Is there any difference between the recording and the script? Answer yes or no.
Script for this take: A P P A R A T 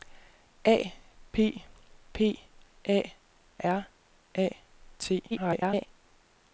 yes